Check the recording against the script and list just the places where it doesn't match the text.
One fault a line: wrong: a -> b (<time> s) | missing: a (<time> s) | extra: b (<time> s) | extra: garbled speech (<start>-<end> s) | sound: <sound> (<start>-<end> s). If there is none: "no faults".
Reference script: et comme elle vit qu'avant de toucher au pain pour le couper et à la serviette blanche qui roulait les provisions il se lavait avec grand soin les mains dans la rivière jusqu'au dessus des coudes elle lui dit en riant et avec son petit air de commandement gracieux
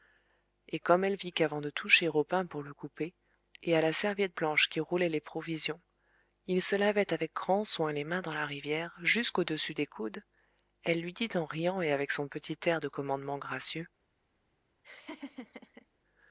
sound: laugh (14.8-15.9 s)